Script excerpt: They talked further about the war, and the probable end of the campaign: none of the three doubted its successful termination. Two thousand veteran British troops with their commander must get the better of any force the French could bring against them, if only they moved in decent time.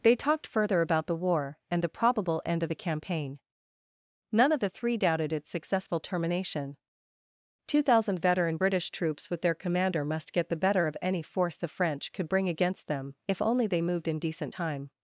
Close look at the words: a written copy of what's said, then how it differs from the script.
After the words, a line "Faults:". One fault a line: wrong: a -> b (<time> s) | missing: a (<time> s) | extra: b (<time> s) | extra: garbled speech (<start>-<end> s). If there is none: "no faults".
They talked further about the war, and the probable end of the campaign: none of the three doubted its successful termination. Two thousand veteran British troops with their commander must get the better of any force the French could bring against them, if only they moved in decent time.
Faults:
no faults